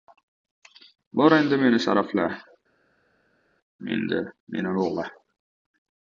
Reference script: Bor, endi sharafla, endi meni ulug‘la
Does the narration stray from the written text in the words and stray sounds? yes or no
yes